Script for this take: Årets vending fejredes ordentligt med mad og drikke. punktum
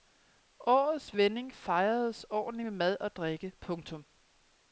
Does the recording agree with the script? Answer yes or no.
yes